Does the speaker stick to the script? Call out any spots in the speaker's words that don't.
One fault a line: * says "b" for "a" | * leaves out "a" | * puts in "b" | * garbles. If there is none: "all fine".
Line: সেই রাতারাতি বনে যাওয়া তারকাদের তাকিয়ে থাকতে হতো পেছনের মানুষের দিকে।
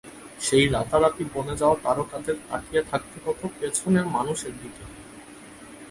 all fine